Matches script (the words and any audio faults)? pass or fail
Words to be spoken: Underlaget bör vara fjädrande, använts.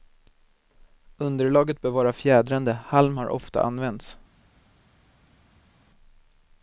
fail